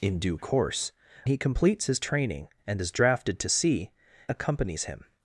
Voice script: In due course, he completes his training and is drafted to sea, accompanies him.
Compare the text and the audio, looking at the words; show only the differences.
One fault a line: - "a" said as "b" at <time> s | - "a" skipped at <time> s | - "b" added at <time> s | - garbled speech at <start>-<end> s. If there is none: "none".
none